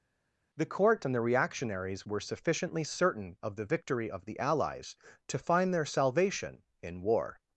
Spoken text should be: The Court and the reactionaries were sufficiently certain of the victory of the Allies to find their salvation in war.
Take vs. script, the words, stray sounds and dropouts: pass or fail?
pass